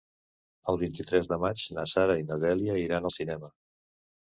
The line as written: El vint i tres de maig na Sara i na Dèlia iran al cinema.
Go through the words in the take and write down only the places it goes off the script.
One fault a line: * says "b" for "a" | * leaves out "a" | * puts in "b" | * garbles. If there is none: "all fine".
all fine